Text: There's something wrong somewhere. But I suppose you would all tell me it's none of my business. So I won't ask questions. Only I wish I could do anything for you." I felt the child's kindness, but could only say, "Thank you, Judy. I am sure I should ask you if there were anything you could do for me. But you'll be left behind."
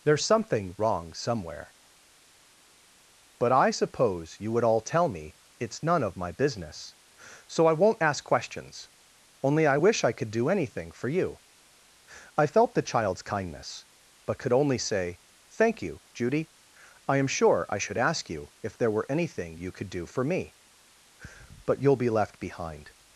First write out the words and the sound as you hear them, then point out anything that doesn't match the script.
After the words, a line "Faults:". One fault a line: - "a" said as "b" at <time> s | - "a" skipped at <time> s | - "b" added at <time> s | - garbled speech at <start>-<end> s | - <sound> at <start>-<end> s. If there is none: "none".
There's something wrong somewhere. But I suppose you would all tell me it's none of my business. So I won't ask questions. Only I wish I could do anything for you." I felt the child's kindness, but could only say, "Thank you, Judy. I am sure I should ask you if there were anything you could do for me. But you'll be left behind."
Faults:
none